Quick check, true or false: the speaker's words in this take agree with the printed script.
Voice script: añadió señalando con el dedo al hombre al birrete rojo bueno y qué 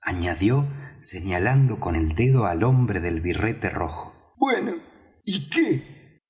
false